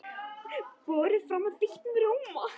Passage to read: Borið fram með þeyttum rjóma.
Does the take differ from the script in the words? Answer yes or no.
no